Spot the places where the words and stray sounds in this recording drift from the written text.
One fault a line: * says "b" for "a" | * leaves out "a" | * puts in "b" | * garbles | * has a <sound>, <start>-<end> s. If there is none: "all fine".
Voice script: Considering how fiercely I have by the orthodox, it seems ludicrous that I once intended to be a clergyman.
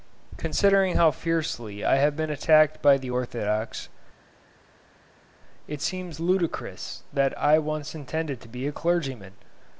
* puts in "been attacked"